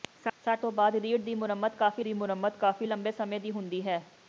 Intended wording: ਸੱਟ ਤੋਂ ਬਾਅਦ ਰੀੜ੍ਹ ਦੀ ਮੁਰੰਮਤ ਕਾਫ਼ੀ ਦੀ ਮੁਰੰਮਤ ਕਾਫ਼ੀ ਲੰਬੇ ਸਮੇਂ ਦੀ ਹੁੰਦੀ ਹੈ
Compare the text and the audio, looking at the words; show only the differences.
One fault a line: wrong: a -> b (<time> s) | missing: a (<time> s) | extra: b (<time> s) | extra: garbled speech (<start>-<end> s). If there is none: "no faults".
no faults